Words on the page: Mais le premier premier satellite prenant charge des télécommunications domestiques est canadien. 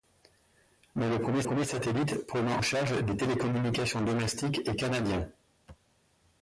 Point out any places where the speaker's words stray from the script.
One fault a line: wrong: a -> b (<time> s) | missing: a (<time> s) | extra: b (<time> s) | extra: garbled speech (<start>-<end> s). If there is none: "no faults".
no faults